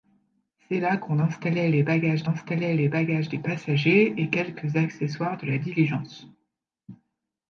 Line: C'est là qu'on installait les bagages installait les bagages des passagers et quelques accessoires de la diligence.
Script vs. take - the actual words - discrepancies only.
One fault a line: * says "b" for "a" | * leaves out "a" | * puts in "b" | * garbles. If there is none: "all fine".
all fine